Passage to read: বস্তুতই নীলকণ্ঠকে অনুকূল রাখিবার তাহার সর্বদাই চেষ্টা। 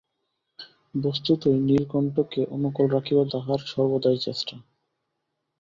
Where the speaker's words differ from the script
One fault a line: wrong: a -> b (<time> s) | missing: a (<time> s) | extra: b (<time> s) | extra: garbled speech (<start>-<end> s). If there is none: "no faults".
no faults